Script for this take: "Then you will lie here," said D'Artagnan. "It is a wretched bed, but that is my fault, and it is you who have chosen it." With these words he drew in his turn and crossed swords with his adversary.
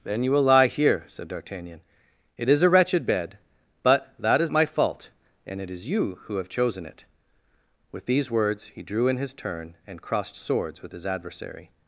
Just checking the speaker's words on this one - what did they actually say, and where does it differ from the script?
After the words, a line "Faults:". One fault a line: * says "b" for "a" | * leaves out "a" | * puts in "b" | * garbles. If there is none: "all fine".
"Then you will lie here," said D'Artagnan. "It is a wretched bed, but that is my fault, and it is you who have chosen it." With these words he drew in his turn and crossed swords with his adversary.
Faults:
all fine